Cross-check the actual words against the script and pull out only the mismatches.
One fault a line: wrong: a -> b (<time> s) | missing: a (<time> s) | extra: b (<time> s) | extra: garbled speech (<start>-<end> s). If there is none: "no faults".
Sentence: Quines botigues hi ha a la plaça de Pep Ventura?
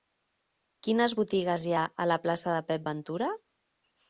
no faults